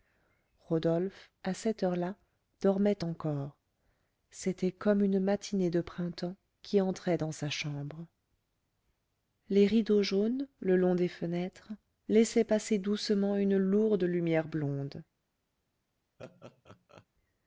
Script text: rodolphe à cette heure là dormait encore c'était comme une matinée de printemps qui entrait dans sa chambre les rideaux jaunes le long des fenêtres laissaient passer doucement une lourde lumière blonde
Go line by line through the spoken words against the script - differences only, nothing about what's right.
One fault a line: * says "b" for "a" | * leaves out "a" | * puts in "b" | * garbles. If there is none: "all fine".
all fine